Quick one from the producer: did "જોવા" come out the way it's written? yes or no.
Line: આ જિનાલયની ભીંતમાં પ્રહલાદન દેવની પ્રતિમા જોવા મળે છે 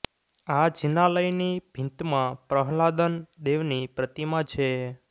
no